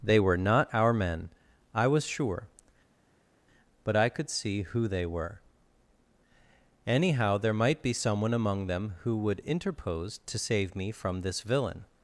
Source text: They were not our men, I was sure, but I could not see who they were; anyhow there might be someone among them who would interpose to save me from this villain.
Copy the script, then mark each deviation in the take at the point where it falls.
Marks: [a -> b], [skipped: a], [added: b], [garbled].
They were not our men, I was sure, but I could [skipped: not] see who they were; anyhow there might be someone among them who would interpose to save me from this villain.